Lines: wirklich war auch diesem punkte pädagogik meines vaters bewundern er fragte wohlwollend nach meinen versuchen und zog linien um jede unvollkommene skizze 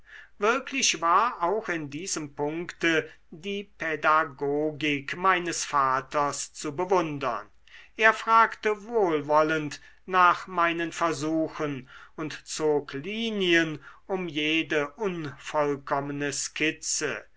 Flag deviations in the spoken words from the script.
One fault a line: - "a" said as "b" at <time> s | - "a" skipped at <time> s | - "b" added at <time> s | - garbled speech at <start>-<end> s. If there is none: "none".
- "in" added at 1.7 s
- "die" added at 3.3 s
- "zu" added at 6.5 s